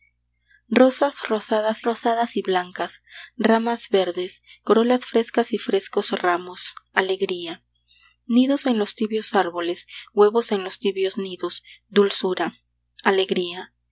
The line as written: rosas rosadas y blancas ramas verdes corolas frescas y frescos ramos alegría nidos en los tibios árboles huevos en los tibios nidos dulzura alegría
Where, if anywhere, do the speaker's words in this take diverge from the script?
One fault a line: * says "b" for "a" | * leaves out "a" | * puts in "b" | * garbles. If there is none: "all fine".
* puts in "rosadas"